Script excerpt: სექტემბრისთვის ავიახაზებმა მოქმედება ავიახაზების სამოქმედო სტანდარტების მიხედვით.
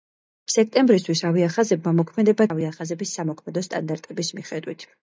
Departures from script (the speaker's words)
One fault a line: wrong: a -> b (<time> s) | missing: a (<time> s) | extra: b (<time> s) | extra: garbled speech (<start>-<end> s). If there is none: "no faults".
no faults